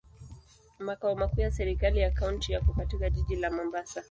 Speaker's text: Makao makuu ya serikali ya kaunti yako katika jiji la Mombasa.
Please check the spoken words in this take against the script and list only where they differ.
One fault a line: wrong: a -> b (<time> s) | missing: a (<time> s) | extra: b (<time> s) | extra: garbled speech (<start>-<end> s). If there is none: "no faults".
no faults